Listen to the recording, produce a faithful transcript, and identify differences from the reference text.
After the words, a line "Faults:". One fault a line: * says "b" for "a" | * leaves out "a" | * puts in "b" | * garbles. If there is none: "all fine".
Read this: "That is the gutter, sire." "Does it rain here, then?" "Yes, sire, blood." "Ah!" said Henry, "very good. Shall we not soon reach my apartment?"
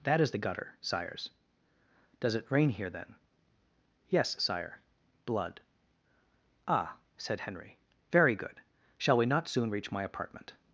"That is the gutter, sires." "Does it rain here, then?" "Yes, sire, blood." "Ah!" said Henry, "very good. Shall we not soon reach my apartment?"
Faults:
* says "sires" for "sire"